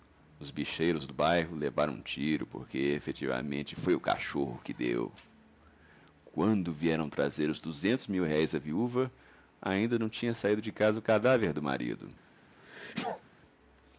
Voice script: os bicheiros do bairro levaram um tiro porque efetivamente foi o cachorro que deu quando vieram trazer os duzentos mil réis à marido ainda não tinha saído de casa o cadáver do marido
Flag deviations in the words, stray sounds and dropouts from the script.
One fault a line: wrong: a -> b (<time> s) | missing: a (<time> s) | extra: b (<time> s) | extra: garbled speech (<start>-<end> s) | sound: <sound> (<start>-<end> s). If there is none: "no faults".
wrong: marido -> viúva (8.6 s)
sound: sneeze (12.5-13.2 s)